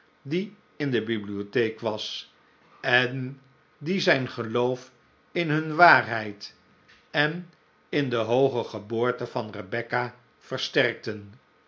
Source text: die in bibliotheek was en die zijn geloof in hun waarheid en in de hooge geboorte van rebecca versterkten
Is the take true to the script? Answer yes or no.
no